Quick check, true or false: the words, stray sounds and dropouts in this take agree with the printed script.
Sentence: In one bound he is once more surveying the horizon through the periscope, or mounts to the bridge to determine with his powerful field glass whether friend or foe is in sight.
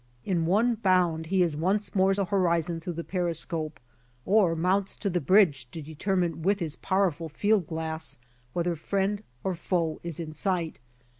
false